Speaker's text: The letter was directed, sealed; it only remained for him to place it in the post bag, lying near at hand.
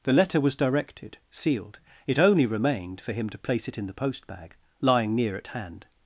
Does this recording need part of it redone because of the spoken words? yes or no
no